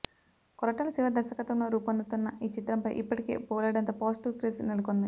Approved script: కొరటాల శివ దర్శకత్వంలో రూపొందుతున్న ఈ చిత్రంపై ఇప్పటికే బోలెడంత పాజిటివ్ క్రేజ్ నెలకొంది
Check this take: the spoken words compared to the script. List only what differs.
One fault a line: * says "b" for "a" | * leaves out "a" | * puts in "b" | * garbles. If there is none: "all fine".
all fine